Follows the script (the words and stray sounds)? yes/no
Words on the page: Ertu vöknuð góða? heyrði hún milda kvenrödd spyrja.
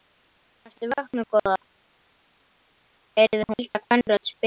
no